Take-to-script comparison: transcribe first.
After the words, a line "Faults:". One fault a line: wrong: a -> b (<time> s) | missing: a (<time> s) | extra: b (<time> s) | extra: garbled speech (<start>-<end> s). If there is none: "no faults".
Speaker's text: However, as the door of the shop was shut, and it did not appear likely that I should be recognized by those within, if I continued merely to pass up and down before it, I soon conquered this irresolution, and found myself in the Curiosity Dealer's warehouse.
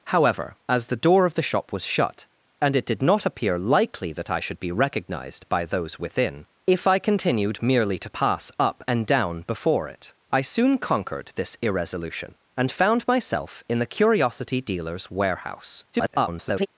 However, as the door of the shop was shut, and it did not appear likely that I should be recognized by those within, if I continued merely to pass up and down before it, I soon conquered this irresolution, and found myself in the Curiosity Dealer's warehouse. [garbled]
Faults:
extra: garbled speech (15.9-16.7 s)